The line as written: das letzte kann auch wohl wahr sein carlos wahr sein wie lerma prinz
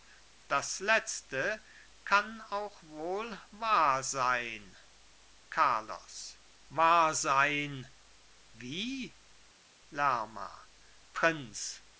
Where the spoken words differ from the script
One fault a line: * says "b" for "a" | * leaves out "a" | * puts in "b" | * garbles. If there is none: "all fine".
all fine